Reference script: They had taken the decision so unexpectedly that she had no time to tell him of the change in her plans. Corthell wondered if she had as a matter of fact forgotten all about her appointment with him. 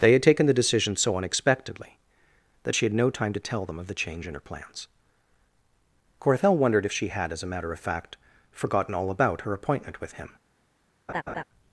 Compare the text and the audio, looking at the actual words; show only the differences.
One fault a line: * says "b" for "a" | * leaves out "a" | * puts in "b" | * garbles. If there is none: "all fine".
* says "them" for "him"